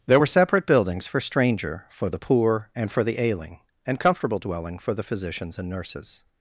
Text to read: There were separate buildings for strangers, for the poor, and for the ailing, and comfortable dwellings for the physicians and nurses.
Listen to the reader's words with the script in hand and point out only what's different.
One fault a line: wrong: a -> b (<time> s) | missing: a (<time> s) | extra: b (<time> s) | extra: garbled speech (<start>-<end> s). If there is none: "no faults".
wrong: strangers -> stranger (1.2 s)
wrong: dwellings -> dwelling (4.4 s)